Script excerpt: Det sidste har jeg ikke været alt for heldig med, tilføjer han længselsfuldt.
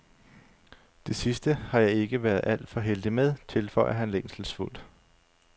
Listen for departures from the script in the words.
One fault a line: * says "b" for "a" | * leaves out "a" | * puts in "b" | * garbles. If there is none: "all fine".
all fine